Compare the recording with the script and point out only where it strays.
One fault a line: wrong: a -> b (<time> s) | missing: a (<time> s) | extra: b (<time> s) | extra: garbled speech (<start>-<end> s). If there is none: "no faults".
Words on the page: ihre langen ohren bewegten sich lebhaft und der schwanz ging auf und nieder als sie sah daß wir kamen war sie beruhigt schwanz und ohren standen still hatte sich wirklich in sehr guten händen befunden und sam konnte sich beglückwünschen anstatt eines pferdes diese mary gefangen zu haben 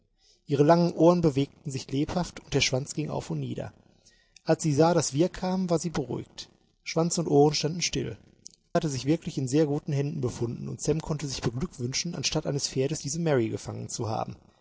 no faults